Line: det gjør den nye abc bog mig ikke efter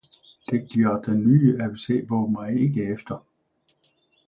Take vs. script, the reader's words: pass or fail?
pass